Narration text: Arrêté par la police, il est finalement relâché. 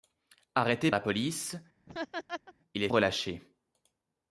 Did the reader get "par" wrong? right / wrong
wrong